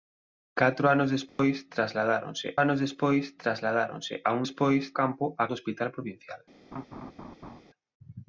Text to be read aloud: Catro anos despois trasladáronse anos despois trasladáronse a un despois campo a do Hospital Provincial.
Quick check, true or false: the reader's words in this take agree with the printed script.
true